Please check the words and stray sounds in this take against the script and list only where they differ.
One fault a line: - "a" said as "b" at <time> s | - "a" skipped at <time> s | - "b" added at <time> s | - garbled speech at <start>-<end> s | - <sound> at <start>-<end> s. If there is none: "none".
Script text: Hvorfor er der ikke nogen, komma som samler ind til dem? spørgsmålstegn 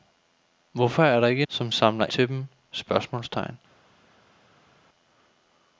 - "nogen komma" skipped at 1.4 s
- "ind" skipped at 2.1 s